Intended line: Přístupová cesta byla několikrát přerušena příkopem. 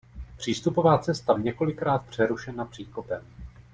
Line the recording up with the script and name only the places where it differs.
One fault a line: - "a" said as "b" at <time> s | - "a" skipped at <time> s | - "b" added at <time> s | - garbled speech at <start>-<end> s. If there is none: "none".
- "byla" skipped at 1.3 s